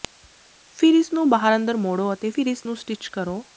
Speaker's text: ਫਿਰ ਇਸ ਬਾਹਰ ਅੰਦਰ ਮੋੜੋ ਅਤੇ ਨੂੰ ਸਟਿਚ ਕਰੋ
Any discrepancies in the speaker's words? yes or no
yes